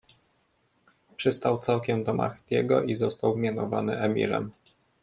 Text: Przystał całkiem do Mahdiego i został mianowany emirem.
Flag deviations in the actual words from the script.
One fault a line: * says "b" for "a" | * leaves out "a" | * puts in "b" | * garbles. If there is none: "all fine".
all fine